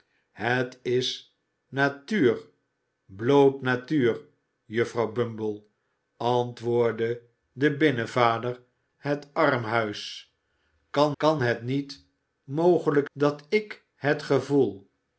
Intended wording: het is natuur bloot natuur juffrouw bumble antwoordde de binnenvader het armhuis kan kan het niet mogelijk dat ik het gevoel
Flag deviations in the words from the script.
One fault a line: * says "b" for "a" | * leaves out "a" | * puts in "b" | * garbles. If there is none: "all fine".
all fine